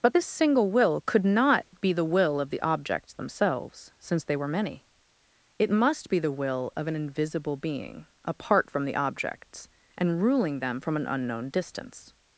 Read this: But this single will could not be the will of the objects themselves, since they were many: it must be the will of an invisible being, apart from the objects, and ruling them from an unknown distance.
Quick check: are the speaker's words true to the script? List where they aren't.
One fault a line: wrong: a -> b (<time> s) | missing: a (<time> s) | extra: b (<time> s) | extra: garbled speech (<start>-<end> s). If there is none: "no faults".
no faults